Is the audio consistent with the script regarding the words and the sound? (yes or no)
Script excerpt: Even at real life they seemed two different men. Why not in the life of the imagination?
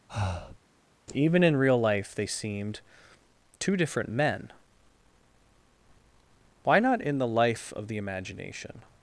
no